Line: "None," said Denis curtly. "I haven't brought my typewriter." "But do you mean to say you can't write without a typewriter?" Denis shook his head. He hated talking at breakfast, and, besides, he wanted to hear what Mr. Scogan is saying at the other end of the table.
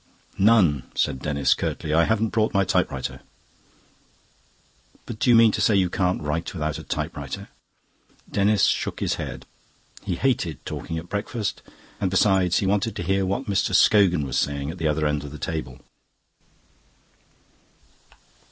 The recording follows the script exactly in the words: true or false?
false